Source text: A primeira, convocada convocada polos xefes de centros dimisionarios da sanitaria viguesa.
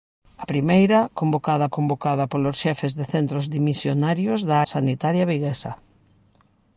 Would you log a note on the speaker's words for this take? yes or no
no